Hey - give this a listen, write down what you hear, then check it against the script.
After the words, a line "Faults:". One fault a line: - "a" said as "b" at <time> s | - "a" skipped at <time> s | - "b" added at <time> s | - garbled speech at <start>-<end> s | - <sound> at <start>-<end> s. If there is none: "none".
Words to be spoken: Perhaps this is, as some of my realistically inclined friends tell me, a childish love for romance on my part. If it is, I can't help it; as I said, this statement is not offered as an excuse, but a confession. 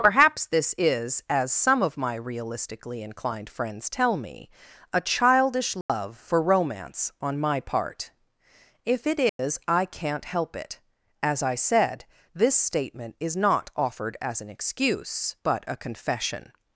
Perhaps this is, as some of my realistically inclined friends tell me, a childish love for romance on my part. If it is, I can't help it; as I said, this statement is not offered as an excuse, but a confession.
Faults:
- dropout at 5.8-5.9 s
- dropout at 9.3-9.4 s